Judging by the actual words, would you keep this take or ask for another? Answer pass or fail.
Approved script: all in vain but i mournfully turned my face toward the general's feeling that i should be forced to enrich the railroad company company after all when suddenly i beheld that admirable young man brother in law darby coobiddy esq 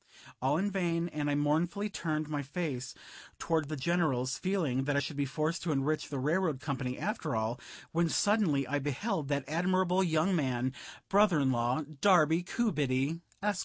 fail